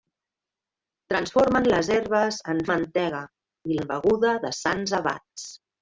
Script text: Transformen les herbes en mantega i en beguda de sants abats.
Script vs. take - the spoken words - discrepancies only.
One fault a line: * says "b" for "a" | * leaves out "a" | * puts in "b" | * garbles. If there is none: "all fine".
all fine